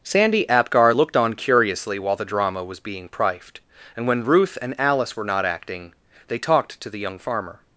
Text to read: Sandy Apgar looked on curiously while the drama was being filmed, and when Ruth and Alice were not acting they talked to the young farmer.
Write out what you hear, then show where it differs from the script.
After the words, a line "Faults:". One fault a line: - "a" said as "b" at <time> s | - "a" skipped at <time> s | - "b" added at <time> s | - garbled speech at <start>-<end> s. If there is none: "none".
Sandy Apgar looked on curiously while the drama was being prifed, and when Ruth and Alice were not acting they talked to the young farmer.
Faults:
- "filmed" said as "prifed" at 3.1 s